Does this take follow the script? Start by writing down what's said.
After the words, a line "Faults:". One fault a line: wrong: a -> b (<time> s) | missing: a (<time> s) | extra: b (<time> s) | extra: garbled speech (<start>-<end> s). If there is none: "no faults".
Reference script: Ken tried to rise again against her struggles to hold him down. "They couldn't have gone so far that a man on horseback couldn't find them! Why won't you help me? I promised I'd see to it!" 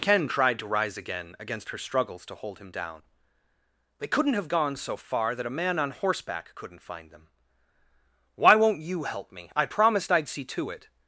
Ken tried to rise again against her struggles to hold him down. "They couldn't have gone so far that a man on horseback couldn't find them! Why won't you help me? I promised I'd see to it!"
Faults:
no faults